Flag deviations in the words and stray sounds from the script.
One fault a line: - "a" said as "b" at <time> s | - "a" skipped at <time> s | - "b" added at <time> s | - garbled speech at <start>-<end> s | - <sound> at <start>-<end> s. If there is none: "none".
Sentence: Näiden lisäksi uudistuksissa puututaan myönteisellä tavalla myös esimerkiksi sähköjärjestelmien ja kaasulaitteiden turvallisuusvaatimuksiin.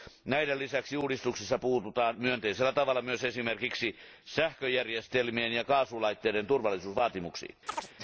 - chirp at 7.7-7.9 s